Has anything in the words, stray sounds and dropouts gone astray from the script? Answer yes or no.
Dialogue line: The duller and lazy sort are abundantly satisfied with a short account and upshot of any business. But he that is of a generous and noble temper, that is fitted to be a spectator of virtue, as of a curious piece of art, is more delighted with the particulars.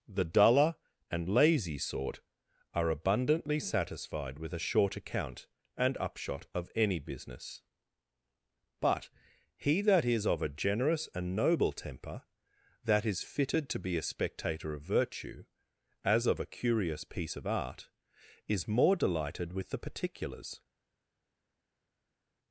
no